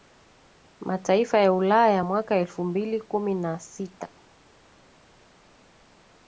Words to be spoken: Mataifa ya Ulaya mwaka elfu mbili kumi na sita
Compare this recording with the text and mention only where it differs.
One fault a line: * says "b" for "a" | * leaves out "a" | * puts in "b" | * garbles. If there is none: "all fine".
all fine